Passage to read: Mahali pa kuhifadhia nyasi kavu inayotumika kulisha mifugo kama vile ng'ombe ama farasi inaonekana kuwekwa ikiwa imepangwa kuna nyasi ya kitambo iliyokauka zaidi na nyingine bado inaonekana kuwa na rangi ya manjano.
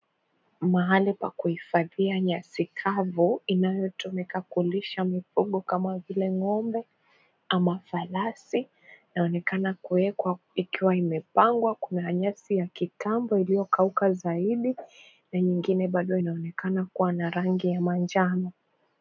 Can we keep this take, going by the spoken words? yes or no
yes